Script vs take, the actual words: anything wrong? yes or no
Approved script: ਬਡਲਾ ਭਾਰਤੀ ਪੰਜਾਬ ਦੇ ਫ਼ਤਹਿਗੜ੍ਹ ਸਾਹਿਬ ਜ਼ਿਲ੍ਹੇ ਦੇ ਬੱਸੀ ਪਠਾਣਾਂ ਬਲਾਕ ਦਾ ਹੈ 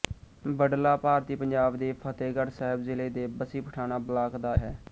no